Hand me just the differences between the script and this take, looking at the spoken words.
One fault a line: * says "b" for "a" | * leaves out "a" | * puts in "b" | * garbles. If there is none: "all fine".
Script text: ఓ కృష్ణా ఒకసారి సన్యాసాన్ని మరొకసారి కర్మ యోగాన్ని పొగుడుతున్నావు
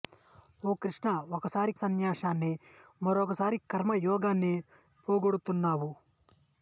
all fine